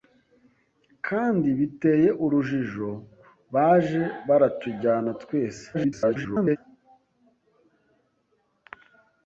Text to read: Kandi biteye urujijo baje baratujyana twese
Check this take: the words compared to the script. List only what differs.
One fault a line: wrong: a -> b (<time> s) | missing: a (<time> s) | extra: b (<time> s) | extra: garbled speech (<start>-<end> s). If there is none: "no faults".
extra: garbled speech (5.7-6.6 s)